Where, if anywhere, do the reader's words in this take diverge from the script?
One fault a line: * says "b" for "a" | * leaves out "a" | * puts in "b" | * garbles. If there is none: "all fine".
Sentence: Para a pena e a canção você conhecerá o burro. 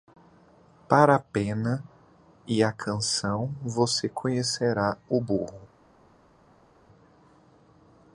all fine